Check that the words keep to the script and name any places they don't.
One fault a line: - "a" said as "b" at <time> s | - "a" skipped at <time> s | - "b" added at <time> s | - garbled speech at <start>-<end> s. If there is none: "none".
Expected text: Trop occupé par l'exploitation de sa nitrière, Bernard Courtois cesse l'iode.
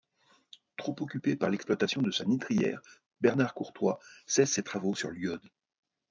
- "ses travaux sur" added at 4.5 s